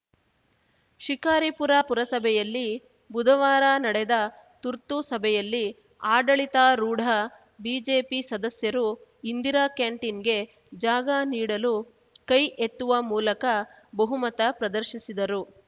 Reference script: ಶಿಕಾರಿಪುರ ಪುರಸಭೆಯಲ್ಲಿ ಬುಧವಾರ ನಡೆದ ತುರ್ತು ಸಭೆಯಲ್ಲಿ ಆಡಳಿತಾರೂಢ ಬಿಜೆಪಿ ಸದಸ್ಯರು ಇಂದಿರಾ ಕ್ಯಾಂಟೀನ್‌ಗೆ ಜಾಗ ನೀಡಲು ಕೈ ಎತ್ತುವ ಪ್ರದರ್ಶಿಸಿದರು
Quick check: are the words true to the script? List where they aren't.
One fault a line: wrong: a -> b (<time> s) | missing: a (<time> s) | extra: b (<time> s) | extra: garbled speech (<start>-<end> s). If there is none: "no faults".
extra: ಮೂಲಕ ಬಹುಮತ (13.1 s)